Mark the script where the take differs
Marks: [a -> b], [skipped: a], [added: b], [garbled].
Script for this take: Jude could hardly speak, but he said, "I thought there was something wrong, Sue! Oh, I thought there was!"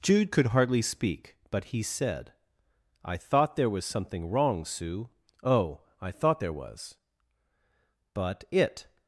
Jude could hardly speak, but he said, "I thought there was something wrong, Sue! Oh, I thought there was!" [added: But it]